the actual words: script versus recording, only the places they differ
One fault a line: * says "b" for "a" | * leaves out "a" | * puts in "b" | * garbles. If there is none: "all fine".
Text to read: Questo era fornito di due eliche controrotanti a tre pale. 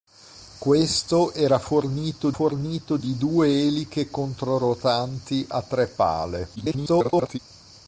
* puts in "fornito"
* garbles